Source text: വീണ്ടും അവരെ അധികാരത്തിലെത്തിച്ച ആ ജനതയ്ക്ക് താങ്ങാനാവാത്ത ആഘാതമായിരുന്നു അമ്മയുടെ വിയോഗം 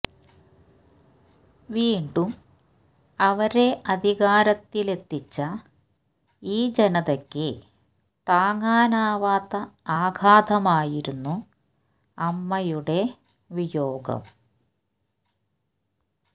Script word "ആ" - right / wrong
wrong